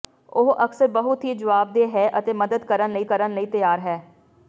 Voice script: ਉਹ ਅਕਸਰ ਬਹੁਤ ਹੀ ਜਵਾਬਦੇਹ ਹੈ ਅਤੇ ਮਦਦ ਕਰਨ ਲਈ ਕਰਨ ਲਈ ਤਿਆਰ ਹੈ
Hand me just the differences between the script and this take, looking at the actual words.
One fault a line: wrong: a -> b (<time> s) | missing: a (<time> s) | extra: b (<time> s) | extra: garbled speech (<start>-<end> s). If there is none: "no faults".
no faults